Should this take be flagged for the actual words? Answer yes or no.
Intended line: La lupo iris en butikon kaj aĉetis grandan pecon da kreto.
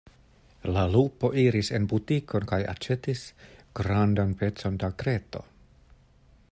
no